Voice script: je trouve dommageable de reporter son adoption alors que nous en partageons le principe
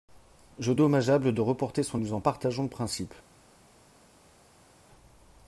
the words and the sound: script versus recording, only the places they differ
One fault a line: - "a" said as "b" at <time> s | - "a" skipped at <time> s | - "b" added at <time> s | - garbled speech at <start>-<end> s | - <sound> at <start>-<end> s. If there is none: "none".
- "trouve" skipped at 0.7 s
- "adoption alors que" skipped at 2.0 s